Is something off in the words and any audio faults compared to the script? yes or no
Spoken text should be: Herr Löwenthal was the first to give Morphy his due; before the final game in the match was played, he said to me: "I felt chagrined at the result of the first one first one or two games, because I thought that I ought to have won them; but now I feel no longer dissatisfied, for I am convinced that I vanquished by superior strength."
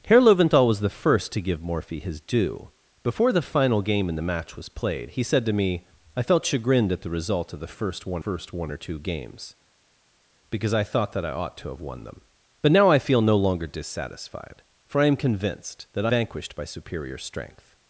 no